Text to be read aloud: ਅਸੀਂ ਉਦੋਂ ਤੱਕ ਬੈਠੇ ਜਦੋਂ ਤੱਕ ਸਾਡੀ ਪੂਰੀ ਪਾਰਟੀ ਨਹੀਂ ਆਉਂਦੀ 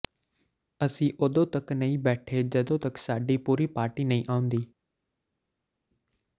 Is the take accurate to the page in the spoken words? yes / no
no